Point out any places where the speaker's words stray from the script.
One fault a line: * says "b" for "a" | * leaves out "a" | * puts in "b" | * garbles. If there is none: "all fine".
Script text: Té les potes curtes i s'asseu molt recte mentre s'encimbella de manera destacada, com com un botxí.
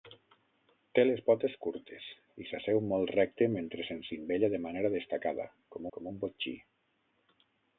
all fine